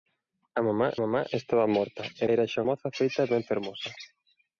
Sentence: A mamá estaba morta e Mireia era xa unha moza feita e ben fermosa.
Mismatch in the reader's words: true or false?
true